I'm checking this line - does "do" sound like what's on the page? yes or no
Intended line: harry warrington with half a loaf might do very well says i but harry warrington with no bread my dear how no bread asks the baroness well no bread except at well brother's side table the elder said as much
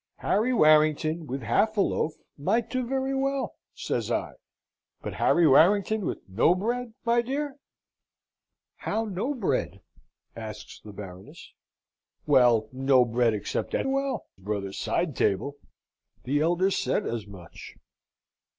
yes